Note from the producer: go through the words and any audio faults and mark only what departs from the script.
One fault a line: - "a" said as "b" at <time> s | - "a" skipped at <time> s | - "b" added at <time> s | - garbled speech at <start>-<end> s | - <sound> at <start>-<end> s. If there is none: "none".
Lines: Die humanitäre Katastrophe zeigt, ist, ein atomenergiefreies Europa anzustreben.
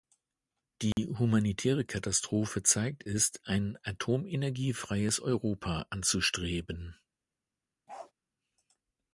- dropout at 0.9-1.0 s
- bark at 7.9-8.1 s